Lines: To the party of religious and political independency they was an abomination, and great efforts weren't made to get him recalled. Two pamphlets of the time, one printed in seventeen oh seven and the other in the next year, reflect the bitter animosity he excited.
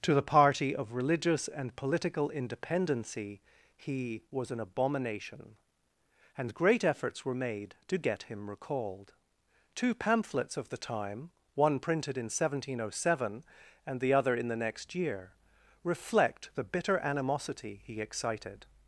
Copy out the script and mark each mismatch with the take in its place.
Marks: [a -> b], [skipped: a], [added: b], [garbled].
To the party of religious and political independency [they -> he] was an abomination, and great efforts [weren't -> were] made to get him recalled. Two pamphlets of the time, one printed in seventeen oh seven and the other in the next year, reflect the bitter animosity he excited.